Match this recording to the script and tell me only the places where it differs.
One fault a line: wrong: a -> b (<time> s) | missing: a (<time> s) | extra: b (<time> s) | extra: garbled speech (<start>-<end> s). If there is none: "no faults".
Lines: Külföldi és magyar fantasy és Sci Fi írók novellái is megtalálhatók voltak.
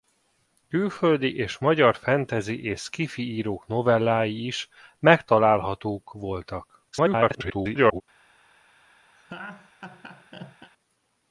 extra: garbled speech (6.9-8.0 s)